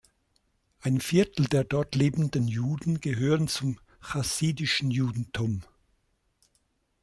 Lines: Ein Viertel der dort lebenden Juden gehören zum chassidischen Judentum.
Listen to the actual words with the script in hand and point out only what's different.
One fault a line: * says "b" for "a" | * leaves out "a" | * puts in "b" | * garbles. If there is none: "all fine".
all fine